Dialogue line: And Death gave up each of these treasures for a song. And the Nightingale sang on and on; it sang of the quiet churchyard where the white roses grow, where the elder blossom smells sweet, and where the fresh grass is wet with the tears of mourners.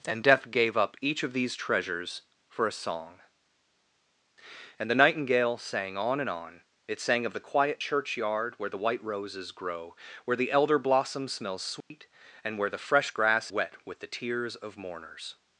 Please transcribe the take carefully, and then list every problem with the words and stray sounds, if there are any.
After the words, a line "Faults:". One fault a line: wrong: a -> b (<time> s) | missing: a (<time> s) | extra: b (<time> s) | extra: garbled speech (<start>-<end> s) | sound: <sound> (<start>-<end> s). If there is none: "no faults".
And Death gave up each of these treasures for a song. And the Nightingale sang on and on; it sang of the quiet churchyard where the white roses grow, where the elder blossom smells sweet, and where the fresh grass wet with the tears of mourners.
Faults:
sound: dropout (11.8-11.9 s)
missing: is (13.5 s)